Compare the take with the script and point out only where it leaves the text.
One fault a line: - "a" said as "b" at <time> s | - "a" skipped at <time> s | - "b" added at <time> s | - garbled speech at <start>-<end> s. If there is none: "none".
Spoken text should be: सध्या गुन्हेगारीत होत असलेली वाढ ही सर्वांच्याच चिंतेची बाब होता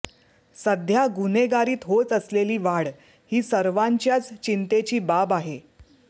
- "होता" said as "आहे" at 5.3 s